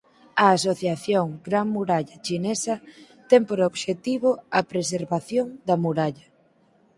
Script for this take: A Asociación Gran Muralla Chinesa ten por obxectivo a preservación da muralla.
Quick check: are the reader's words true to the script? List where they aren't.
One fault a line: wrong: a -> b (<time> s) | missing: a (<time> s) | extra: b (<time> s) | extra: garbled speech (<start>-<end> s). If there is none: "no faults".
no faults